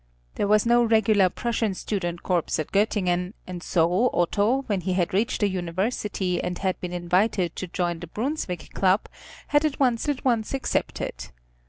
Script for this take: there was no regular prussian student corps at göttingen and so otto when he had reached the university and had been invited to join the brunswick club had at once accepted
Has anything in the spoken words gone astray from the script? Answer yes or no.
yes